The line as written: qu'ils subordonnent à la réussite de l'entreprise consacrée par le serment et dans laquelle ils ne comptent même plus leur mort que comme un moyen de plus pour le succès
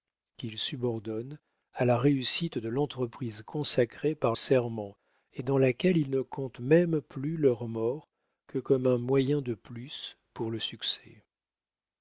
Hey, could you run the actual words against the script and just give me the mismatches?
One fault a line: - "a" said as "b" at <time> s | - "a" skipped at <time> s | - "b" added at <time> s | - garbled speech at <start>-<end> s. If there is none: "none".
- "le" skipped at 4.3 s